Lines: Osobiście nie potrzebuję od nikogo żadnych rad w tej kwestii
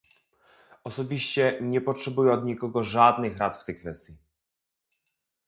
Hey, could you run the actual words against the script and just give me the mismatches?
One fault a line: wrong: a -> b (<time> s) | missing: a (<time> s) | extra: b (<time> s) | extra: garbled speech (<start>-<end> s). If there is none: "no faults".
no faults